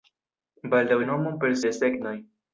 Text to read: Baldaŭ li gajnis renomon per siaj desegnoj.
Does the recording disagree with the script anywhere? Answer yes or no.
yes